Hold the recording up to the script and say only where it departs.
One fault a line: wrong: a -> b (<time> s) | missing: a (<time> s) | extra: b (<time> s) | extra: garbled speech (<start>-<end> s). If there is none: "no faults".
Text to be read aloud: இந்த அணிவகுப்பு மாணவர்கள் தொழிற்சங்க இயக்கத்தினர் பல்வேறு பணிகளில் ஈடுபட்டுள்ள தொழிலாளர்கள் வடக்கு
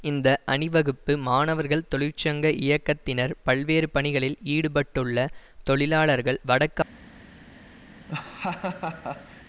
no faults